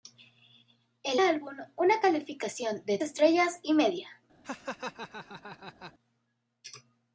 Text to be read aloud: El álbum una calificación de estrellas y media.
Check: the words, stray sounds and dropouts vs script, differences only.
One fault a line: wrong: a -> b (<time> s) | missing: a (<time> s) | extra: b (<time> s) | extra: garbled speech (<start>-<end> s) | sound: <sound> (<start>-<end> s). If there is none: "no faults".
sound: laugh (4.4-5.9 s)